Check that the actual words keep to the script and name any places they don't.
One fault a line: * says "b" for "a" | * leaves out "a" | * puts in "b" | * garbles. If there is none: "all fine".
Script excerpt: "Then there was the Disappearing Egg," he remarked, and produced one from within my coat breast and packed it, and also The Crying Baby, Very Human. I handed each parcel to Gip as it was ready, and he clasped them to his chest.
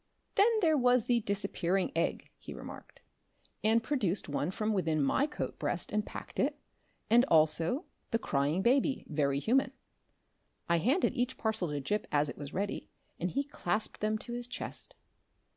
all fine